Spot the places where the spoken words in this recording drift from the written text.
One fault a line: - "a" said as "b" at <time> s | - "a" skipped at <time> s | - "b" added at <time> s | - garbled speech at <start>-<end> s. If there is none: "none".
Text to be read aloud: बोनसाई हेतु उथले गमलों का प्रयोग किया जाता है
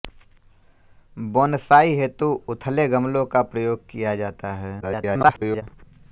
- garbled speech at 4.8-5.6 s